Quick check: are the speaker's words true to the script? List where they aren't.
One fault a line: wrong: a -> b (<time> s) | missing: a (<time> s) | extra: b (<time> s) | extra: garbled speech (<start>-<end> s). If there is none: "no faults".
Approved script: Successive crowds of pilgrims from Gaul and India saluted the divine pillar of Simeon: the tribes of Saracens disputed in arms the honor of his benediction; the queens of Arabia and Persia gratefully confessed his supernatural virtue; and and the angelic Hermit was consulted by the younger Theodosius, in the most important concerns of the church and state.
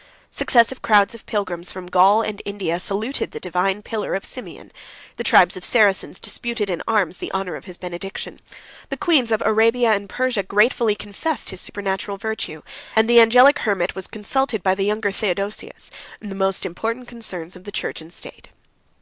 missing: and (13.1 s)